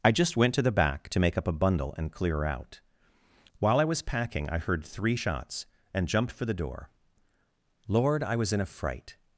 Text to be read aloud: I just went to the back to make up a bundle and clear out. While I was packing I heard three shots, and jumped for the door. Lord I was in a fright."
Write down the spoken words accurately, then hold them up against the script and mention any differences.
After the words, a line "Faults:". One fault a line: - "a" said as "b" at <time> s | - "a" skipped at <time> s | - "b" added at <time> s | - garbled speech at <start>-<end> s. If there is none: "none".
I just went to the back to make up a bundle and clear out. While I was packing I heard three shots, and jumped for the door. Lord I was in a fright."
Faults:
none